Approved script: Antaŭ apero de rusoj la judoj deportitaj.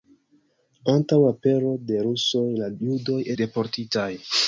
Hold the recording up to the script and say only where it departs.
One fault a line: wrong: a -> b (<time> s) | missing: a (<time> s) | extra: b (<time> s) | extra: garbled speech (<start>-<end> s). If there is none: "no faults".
no faults